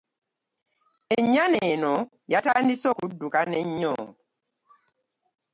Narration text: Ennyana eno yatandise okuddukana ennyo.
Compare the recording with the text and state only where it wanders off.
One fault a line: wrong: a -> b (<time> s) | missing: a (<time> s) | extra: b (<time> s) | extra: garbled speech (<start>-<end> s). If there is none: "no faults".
no faults